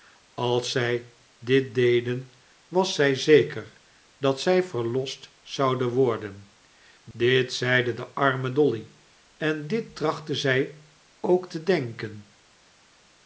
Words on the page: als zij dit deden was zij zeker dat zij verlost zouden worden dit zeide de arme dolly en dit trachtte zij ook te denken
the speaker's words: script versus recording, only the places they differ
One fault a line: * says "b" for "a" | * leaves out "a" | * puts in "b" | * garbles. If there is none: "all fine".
all fine